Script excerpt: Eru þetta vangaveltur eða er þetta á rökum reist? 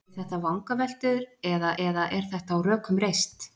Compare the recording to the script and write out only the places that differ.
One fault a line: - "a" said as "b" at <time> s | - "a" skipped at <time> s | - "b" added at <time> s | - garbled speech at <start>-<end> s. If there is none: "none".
- "eða" added at 1.8 s